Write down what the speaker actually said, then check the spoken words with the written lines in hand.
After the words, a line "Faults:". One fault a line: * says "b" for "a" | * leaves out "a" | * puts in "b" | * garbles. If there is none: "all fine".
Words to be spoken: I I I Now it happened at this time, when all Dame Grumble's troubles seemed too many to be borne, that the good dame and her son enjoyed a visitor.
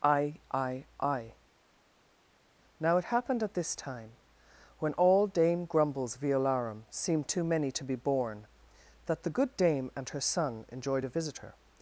I I I Now it happened at this time, when all Dame Grumble's violarum seemed too many to be borne, that the good dame and her son enjoyed a visitor.
Faults:
* says "violarum" for "troubles"